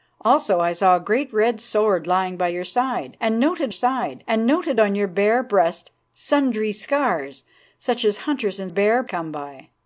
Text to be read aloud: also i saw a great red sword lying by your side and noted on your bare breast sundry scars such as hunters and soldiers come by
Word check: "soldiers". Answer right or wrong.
wrong